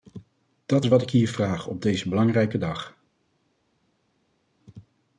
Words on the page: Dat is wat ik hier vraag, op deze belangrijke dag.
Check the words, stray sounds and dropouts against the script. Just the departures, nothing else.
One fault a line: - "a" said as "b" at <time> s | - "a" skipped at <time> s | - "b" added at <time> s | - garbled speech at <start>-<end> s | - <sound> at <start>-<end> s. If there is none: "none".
none